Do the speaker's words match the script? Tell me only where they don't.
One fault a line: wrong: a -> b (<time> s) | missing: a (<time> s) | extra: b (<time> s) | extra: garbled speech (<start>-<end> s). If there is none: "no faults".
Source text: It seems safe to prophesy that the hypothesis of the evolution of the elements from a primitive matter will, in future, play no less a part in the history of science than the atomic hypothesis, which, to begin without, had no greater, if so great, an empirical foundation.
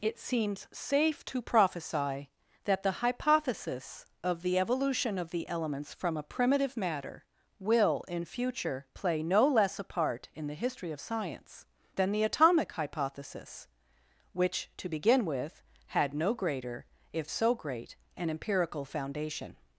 wrong: without -> with (15.3 s)